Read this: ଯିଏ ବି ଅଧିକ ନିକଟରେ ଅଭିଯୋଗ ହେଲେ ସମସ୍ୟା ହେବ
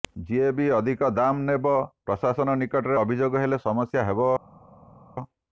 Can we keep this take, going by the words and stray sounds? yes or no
no